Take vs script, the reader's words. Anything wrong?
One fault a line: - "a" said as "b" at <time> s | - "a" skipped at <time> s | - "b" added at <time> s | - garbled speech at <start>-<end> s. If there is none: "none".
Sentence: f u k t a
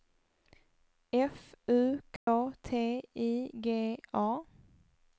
- "i g" added at 3.2 s